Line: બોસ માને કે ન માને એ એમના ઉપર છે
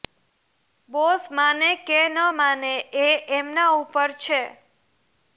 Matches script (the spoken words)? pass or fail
pass